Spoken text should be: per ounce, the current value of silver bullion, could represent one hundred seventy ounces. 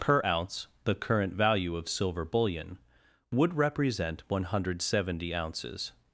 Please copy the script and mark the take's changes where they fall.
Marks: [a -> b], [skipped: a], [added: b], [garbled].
per ounce, the current value of silver bullion, [could -> would] represent one hundred seventy ounces.